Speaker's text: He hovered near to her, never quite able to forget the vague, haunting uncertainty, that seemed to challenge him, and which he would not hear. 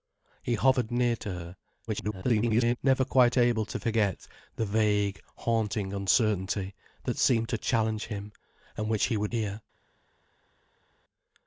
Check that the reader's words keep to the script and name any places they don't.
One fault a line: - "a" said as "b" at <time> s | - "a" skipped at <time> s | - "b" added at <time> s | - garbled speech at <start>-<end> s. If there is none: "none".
- garbled speech at 1.9-2.8 s
- "not" skipped at 9.3 s